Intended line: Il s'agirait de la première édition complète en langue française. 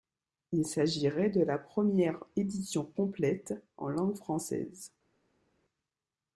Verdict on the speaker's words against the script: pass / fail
pass